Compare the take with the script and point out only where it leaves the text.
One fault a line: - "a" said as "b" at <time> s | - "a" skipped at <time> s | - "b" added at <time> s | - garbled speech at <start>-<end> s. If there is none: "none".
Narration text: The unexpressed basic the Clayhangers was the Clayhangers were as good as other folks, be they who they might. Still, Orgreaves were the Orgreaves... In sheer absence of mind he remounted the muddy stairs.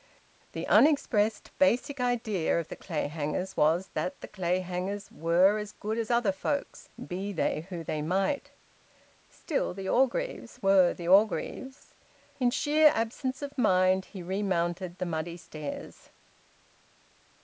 - "idea of" added at 2.0 s
- "that" added at 3.9 s
- "the" added at 9.8 s